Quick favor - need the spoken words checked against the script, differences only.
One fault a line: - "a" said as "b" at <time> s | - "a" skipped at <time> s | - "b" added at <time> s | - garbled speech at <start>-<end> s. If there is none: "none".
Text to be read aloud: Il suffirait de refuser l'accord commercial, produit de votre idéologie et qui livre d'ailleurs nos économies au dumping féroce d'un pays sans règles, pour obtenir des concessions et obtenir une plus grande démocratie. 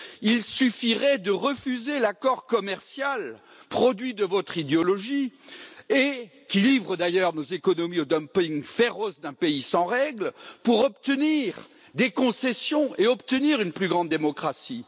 none